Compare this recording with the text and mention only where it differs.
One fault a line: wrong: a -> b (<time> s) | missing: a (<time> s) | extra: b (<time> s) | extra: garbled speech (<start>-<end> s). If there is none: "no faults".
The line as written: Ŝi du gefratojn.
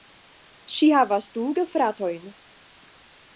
extra: havas (1.0 s)